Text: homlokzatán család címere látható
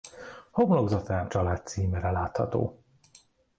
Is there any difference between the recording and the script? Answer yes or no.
no